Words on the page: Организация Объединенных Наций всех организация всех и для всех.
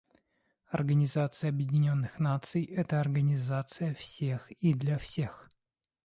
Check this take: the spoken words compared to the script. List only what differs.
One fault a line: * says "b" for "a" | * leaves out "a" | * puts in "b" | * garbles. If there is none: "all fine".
* says "это" for "всех"